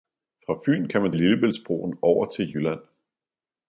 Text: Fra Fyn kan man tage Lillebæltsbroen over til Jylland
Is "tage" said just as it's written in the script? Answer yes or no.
no